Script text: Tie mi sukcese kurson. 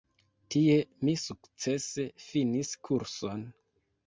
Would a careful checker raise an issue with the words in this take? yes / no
yes